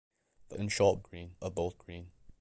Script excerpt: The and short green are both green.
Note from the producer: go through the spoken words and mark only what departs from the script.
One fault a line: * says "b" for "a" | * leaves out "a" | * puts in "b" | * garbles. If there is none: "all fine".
all fine